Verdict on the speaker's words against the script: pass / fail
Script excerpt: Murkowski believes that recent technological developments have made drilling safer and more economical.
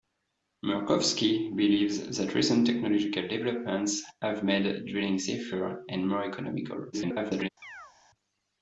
fail